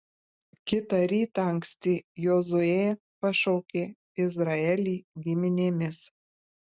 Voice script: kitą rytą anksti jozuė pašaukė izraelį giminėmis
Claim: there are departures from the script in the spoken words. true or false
false